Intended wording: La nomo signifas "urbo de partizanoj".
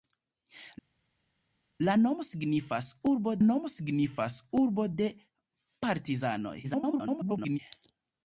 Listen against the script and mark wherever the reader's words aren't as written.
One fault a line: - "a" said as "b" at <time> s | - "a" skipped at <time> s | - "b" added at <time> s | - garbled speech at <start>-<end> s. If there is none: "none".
- "nomo signifas urbo" added at 3.5 s
- garbled speech at 6.6-7.6 s